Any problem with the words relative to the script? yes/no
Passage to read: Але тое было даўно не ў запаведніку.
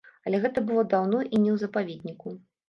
yes